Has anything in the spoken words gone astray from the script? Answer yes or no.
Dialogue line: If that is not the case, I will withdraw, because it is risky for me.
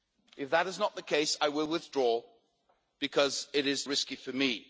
no